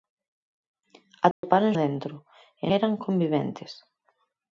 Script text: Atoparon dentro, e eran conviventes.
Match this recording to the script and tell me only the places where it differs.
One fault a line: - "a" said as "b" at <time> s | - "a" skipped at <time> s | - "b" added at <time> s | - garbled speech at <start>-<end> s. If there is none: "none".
none